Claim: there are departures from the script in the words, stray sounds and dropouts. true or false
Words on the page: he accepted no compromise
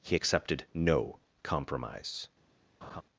true